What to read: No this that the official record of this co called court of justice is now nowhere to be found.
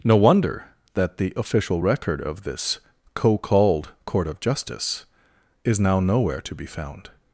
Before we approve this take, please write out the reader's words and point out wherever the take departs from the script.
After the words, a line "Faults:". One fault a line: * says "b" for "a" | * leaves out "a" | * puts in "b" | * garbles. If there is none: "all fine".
No wonder that the official record of this co called court of justice is now nowhere to be found.
Faults:
* says "wonder" for "this"